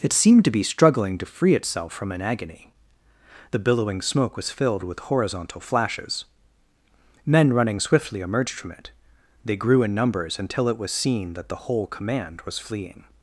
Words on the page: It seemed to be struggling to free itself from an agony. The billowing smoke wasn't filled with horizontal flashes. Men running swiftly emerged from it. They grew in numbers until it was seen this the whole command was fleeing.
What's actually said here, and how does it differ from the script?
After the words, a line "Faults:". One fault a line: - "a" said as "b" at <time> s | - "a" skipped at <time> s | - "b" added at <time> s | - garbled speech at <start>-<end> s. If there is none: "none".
It seemed to be struggling to free itself from an agony. The billowing smoke was filled with horizontal flashes. Men running swiftly emerged from it. They grew in numbers until it was seen that the whole command was fleeing.
Faults:
- "wasn't" said as "was" at 4.4 s
- "this" said as "that" at 11.3 s